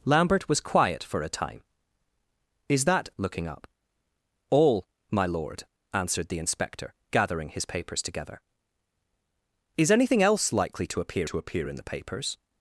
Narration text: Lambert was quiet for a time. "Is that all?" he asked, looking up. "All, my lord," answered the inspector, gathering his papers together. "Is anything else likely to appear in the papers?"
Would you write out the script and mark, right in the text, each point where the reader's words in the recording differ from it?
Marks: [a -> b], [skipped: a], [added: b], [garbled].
Lambert was quiet for a time. "Is that [skipped: all?" he asked,] looking up. "All, my lord," answered the inspector, gathering his papers together. "Is anything else likely to appear [added: to appear] in the papers?"